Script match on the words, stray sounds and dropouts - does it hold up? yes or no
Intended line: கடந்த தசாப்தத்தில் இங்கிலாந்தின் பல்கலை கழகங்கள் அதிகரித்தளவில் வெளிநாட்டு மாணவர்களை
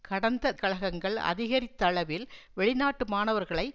no